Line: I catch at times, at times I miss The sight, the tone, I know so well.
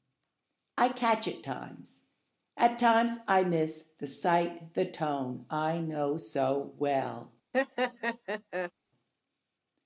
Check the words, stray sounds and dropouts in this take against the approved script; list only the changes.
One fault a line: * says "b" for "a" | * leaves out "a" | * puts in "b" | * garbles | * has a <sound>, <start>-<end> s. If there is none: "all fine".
* has a laugh, 7.5-8.7 s